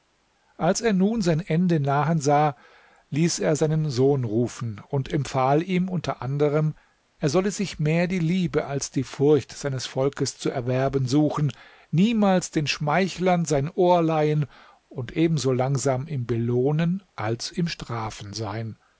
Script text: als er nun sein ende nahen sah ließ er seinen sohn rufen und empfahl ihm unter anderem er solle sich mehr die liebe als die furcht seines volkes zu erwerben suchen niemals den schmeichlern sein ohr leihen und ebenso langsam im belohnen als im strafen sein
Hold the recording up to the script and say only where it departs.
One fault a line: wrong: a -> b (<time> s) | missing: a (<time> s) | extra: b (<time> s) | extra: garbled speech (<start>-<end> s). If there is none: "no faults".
no faults